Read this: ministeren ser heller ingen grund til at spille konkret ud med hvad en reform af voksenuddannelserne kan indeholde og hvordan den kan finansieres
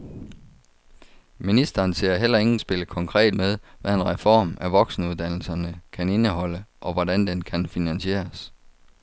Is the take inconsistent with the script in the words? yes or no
yes